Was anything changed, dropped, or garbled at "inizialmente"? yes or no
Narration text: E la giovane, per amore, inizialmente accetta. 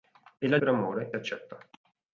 yes